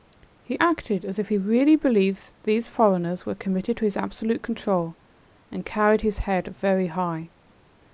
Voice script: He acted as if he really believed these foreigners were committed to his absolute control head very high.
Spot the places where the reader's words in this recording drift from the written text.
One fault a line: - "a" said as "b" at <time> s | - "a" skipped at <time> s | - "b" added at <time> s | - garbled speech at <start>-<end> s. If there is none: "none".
- "and carried his" added at 5.5 s